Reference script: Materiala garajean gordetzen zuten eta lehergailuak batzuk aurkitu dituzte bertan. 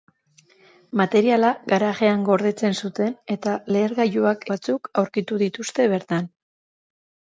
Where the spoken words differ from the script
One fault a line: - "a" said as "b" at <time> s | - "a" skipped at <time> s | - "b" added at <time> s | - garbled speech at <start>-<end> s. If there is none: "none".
none